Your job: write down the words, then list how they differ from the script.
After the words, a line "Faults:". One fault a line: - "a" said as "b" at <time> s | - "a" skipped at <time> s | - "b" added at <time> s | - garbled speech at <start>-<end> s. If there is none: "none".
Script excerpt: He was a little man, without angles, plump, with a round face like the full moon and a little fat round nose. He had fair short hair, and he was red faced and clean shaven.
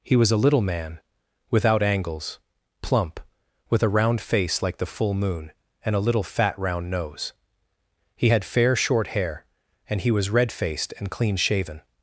He was a little man, without angles, plump, with a round face like the full moon and a little fat round nose. He had fair short hair, and he was red faced and clean shaven.
Faults:
none